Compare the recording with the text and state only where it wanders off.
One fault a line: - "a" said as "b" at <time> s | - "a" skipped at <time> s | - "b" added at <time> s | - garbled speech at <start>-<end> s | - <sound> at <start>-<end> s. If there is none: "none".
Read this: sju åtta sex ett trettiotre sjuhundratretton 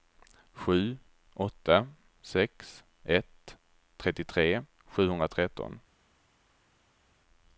none